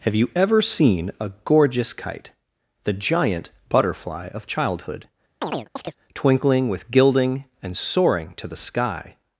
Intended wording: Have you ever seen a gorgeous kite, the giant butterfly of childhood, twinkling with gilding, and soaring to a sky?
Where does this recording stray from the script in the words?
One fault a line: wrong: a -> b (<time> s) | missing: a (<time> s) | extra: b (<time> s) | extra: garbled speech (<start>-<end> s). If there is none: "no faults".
wrong: a -> the (8.5 s)